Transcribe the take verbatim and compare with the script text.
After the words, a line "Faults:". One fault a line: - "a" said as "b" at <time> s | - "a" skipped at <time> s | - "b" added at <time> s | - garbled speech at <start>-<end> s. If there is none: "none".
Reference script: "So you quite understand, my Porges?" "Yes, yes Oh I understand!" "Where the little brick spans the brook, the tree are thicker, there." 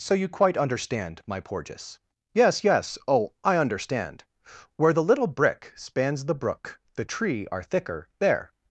"So you quite understand, my Porges?" "Yes, yes Oh I understand!" "Where the little brick spans the brook, the tree are thicker, there."
Faults:
none